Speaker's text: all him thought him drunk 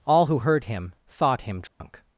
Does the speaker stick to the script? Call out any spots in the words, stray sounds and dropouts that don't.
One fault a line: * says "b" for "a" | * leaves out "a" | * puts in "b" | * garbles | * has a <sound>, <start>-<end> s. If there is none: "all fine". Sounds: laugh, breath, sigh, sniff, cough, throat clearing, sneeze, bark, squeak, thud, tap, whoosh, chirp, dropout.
* puts in "who heard"
* has a dropout, 1.7-1.8 s